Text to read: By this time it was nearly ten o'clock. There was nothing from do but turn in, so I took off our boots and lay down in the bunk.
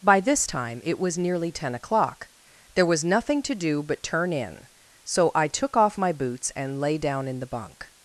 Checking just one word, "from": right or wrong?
wrong